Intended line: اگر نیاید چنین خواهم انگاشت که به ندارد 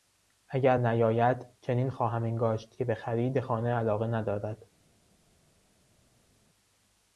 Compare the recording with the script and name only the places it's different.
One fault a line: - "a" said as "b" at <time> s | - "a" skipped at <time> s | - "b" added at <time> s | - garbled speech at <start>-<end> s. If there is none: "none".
- "خرید خانه علاقه" added at 2.9 s